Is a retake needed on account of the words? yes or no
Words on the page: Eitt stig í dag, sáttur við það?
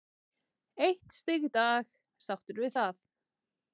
no